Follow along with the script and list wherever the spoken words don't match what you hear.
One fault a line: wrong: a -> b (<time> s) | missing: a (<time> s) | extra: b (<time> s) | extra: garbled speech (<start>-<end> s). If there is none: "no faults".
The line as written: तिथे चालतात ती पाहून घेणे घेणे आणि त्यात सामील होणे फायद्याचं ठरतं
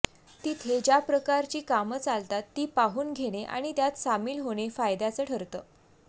extra: ज्या प्रकारची कामं (0.8 s)
missing: घेणे (3.4 s)